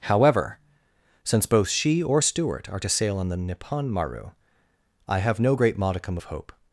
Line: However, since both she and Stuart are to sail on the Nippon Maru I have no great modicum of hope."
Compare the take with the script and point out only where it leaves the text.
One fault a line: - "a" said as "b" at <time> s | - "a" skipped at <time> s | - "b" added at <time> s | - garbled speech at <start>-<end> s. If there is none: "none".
- "and" said as "or" at 2.0 s